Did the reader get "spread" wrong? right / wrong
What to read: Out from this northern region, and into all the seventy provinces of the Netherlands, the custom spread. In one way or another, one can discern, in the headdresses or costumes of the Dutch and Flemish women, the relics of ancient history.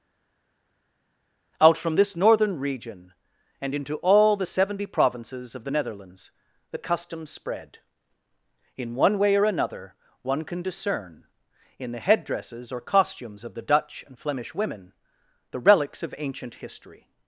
right